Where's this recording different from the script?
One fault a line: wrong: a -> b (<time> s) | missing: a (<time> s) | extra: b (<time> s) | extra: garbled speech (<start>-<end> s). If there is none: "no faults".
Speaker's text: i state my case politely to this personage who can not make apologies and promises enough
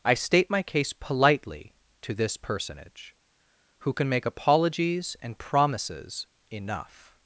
missing: not (4.1 s)